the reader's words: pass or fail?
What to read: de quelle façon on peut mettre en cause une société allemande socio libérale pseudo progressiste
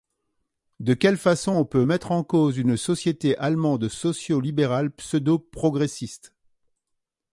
pass